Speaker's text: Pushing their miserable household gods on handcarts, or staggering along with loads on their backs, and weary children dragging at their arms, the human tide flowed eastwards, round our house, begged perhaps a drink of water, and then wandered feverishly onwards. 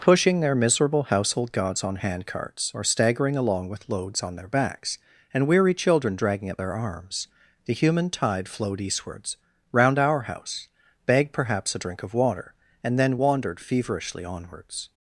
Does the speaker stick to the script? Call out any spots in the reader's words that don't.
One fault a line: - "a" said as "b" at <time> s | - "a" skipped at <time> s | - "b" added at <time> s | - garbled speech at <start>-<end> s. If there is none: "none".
none